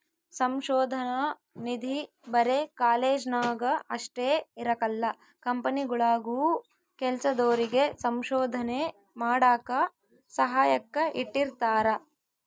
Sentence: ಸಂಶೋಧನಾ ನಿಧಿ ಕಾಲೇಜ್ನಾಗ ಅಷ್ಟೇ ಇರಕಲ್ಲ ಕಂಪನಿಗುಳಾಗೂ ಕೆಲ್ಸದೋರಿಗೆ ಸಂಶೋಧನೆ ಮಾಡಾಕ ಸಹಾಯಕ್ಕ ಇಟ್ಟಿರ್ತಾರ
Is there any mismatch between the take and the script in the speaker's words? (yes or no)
yes